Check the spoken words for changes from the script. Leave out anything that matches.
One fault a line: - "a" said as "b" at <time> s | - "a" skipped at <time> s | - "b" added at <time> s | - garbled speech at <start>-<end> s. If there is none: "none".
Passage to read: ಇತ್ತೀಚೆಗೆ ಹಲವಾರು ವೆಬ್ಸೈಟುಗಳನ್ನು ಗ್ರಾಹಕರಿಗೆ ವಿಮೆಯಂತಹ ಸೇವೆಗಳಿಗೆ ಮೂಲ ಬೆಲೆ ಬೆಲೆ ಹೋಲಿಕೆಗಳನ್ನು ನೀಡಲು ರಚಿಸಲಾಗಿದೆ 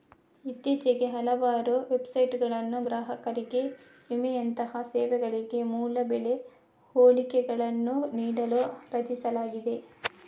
- "ಬೆಲೆ" skipped at 6.3 s